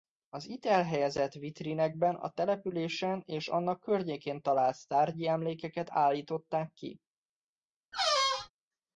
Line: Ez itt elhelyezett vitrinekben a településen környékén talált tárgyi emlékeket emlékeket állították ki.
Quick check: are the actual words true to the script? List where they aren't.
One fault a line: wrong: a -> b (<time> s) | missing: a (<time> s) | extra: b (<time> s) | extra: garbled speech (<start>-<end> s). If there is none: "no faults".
wrong: Ez -> Az (0.3 s)
extra: és annak (3.2 s)
missing: emlékeket (5.9 s)